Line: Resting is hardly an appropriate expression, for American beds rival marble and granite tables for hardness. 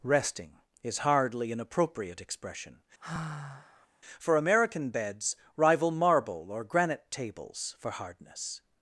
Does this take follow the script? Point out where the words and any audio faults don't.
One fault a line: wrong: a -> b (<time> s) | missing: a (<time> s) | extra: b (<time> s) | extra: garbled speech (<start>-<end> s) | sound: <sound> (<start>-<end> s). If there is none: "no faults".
sound: sigh (3.0-3.9 s)
wrong: and -> or (6.5 s)